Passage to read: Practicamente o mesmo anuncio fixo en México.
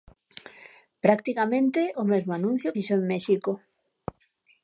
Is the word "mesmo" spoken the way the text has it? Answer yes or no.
yes